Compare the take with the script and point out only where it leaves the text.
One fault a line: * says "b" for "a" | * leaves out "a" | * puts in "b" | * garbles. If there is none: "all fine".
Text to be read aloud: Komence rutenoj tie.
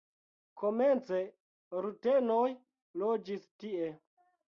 * puts in "loĝis"